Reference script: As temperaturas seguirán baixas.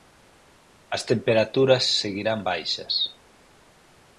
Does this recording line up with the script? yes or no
yes